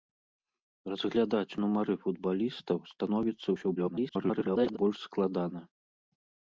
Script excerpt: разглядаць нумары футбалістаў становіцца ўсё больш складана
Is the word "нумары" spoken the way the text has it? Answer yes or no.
yes